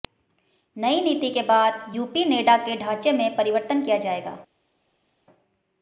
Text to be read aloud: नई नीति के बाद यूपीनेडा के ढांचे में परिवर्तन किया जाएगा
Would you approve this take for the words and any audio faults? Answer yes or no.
yes